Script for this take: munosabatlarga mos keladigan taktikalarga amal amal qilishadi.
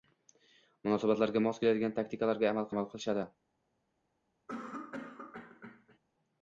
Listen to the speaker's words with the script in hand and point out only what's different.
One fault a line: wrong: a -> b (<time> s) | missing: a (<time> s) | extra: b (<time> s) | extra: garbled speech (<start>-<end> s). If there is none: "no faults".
no faults